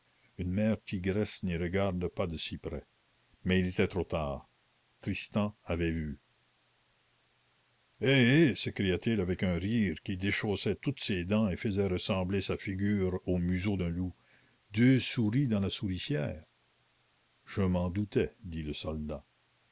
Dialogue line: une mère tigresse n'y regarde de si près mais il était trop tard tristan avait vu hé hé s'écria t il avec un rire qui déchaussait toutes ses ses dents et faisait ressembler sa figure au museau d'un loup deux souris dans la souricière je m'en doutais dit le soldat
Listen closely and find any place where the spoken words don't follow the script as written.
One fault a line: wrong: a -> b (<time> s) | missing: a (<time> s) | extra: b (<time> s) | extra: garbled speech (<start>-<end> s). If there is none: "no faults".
extra: pas (2.1 s)
missing: ses (11.2 s)